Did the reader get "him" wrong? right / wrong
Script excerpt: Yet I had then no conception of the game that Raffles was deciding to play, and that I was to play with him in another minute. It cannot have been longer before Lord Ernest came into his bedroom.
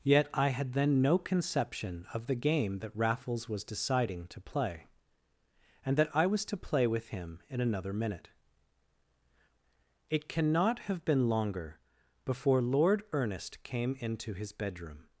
right